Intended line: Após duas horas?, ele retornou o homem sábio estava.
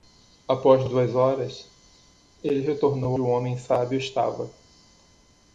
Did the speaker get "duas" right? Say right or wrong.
right